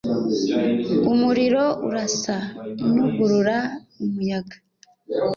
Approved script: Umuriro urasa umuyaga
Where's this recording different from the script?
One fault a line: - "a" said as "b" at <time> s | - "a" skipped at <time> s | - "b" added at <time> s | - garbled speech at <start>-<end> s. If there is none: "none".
- "nugurura" added at 2.9 s